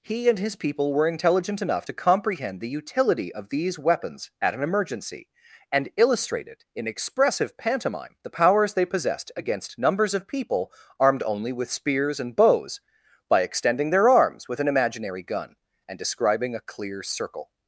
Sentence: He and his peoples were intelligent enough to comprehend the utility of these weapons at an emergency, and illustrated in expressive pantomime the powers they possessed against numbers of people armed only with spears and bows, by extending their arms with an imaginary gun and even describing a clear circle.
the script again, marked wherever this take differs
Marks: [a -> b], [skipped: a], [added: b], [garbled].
He and his [peoples -> people] were intelligent enough to comprehend the utility of these weapons at an emergency, and illustrated in expressive pantomime the powers they possessed against numbers of people armed only with spears and bows, by extending their arms with an imaginary gun and [skipped: even] describing a clear circle.